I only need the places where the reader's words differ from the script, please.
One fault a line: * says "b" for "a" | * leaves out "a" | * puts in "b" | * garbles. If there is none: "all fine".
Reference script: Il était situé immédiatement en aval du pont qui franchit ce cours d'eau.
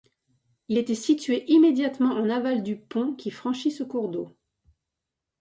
all fine